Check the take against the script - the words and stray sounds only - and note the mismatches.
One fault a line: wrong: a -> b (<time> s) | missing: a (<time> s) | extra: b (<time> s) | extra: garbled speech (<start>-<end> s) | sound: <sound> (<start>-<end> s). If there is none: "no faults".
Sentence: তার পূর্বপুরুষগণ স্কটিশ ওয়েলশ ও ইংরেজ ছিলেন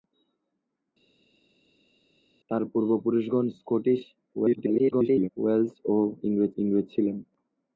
extra: garbled speech (4.3-5.3 s)
extra: ইংরেজ (6.6 s)